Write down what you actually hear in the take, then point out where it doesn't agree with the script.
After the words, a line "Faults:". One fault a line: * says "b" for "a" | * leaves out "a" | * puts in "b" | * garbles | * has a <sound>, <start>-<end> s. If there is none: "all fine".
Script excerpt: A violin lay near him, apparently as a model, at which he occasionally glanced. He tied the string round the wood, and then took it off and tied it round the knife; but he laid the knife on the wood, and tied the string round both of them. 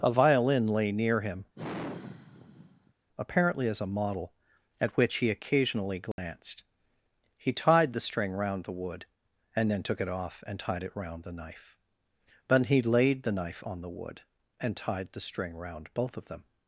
A violin lay near him, apparently as a model, at which he occasionally glanced. He tied the string round the wood, and then took it off and tied it round the knife; but he laid the knife on the wood, and tied the string round both of them.
Faults:
* has a sigh, 1.5-2.9 s
* has a dropout, 6.1-6.2 s